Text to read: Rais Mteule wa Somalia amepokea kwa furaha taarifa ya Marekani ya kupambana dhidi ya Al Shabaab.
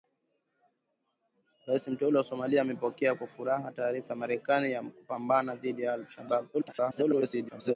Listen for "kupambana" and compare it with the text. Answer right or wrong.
right